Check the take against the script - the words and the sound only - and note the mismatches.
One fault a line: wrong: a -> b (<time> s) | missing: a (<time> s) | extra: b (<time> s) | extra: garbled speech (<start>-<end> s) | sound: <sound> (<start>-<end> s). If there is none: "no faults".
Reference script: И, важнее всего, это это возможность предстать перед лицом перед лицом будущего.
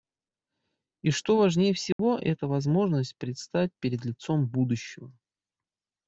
extra: что (1.1 s)
sound: dropout (1.9-2.0 s)
missing: это (2.5 s)
missing: перед лицом (4.5 s)